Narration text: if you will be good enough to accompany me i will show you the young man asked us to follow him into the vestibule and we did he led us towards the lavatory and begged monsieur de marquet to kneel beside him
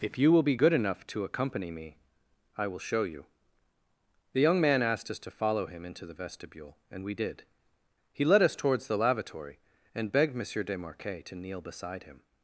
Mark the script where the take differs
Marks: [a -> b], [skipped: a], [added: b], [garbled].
if you will be good enough to accompany me i will show you the young man asked us to follow him into the vestibule and we did he led us towards the lavatory and begged monsieur de marquet to kneel beside him